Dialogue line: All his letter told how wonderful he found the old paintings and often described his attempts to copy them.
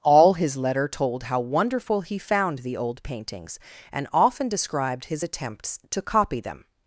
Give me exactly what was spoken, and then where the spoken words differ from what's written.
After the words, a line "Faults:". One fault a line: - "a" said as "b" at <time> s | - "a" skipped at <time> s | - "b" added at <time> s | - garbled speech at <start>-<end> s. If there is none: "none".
All his letter told how wonderful he found the old paintings and often described his attempts to copy them.
Faults:
none